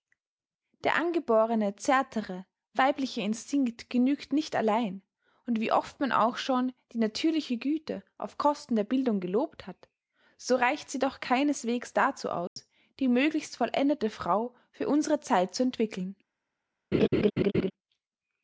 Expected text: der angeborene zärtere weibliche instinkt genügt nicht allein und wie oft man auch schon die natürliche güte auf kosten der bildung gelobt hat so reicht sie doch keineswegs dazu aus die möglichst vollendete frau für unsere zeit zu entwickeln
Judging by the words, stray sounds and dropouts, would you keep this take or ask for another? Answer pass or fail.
fail